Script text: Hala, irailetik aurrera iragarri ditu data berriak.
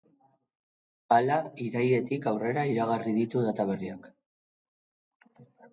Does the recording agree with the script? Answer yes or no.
yes